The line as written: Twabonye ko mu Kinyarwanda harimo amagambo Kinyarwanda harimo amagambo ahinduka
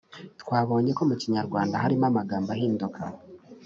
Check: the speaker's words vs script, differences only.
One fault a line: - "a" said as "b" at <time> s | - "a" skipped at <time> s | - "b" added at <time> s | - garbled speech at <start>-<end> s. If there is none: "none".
- "Kinyarwanda harimo amagambo" skipped at 2.5 s